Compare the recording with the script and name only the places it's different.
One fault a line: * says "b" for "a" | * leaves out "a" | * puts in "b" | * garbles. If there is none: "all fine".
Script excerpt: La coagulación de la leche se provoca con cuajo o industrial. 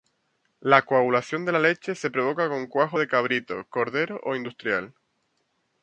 * puts in "de cabrito cordero"